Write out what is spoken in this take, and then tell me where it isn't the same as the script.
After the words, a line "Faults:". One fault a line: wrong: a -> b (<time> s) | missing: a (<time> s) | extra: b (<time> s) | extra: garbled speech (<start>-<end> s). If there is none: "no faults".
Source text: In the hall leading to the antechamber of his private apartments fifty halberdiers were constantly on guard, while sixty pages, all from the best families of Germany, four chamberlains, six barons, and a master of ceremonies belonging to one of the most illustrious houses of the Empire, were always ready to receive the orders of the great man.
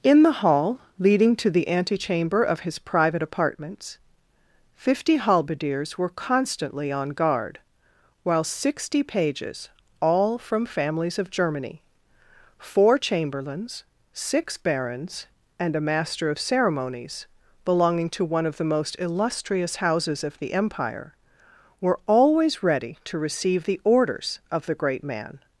In the hall leading to the antechamber of his private apartments fifty halberdiers were constantly on guard, while sixty pages, all from families of Germany, four chamberlains, six barons, and a master of ceremonies belonging to one of the most illustrious houses of the Empire, were always ready to receive the orders of the great man.
Faults:
missing: the best (10.7 s)